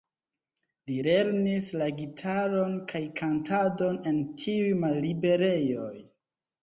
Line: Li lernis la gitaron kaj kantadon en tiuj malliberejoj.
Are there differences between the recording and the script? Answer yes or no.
no